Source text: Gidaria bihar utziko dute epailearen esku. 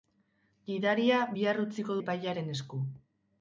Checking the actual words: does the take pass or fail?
fail